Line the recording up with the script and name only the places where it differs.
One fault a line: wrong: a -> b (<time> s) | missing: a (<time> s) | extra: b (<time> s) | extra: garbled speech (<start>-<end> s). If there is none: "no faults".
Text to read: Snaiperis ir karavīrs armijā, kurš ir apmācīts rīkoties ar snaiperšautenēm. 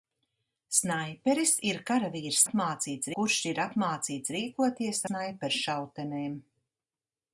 wrong: armijā -> apmācīts (2.4 s)
missing: ar (5.0 s)